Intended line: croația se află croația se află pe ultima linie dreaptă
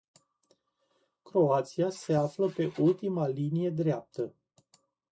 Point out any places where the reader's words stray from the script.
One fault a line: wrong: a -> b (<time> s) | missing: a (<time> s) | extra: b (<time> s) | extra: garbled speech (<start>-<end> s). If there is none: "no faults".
missing: croația se află (2.5 s)